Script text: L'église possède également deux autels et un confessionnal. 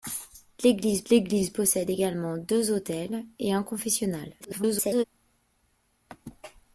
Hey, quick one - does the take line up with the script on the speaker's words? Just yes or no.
no